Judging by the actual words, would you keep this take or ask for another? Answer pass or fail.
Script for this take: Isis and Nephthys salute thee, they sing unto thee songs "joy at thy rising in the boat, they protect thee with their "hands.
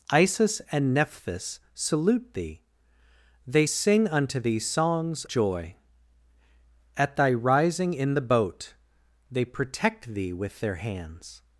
pass